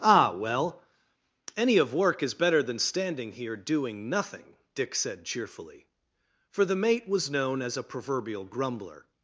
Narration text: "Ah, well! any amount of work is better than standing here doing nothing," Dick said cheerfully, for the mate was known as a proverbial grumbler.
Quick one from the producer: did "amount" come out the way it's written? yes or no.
no